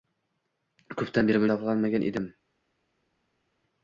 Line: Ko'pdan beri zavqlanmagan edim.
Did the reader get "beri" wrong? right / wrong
right